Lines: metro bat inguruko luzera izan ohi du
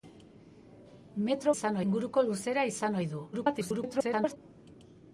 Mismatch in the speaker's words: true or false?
true